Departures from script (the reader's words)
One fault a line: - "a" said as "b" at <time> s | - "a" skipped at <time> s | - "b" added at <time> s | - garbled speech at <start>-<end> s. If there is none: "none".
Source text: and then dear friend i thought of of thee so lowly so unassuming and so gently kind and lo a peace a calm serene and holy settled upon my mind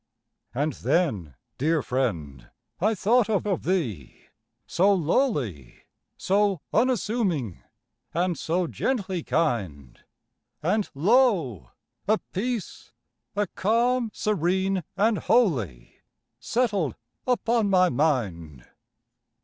none